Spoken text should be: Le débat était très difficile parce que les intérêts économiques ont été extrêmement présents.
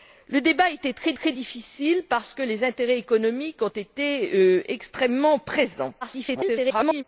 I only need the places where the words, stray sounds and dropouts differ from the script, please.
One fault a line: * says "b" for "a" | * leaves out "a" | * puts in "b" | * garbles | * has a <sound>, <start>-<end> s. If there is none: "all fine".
* puts in "très"
* garbles